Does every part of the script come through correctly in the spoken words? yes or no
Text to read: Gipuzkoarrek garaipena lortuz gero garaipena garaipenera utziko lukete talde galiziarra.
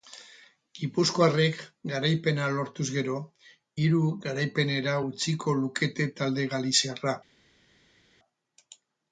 no